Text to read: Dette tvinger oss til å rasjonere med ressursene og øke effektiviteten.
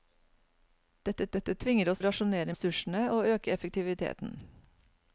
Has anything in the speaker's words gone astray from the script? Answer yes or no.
yes